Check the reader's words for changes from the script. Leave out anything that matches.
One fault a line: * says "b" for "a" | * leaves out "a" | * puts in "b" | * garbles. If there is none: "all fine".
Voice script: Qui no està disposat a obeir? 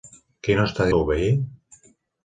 * leaves out "disposat"